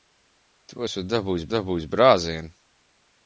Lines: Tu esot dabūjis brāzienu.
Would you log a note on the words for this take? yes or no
yes